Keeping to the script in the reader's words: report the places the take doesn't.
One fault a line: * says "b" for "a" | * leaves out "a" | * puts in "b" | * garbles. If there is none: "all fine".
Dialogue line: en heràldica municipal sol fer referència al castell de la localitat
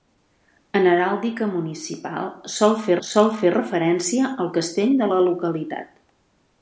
* puts in "sol fer"